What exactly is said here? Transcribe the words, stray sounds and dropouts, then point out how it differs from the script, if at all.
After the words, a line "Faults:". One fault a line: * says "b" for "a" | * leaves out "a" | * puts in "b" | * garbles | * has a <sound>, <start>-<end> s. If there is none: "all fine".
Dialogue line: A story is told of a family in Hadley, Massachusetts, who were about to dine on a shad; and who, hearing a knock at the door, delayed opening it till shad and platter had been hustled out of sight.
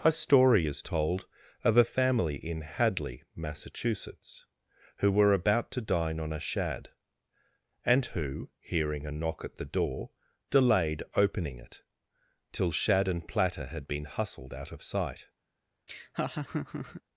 A story is told of a family in Hadley, Massachusetts, who were about to dine on a shad; and who, hearing a knock at the door, delayed opening it till shad and platter had been hustled out of sight.
Faults:
* has a laugh, 15.9-17.0 s